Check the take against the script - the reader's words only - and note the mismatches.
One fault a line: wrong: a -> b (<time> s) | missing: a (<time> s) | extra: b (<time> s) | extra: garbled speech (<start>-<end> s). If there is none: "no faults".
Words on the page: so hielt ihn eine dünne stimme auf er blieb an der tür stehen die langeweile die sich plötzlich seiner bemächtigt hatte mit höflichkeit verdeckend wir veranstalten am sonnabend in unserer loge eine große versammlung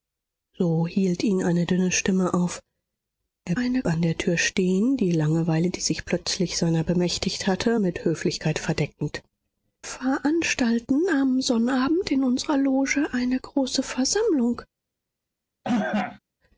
wrong: blieb -> eine (3.6 s)
missing: wir (9.2 s)